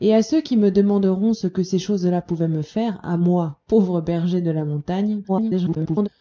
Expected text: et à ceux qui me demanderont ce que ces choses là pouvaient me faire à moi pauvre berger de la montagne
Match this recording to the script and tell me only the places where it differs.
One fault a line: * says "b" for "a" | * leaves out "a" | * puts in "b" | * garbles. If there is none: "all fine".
* garbles